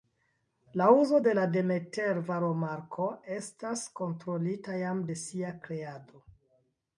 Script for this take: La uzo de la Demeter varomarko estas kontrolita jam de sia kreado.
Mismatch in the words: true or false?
false